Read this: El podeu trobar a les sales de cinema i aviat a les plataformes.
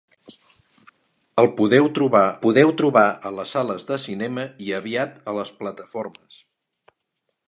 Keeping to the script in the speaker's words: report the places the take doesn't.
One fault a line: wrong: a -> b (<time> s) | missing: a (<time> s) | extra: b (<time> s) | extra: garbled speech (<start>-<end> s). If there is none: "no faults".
extra: podeu trobar (2.4 s)